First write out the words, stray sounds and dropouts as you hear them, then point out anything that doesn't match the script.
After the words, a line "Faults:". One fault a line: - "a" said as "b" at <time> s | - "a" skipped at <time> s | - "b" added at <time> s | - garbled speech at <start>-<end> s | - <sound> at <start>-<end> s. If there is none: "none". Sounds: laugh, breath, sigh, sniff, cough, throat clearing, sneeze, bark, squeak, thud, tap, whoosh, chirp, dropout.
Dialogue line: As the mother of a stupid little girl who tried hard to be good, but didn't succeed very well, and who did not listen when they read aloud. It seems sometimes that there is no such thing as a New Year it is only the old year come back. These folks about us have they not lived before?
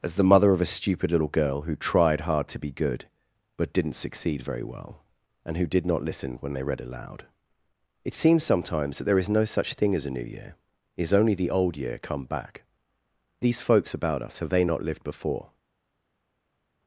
As the mother of a stupid little girl who tried hard to be good, but didn't succeed very well, and who did not listen when they read aloud. It seems sometimes that there is no such thing as a New Year it is only the old year come back. These folks about us have they not lived before?
Faults:
none